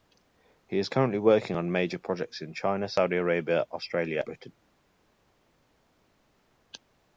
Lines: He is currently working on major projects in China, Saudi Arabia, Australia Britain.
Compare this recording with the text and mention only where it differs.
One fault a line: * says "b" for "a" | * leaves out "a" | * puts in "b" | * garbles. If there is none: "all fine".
all fine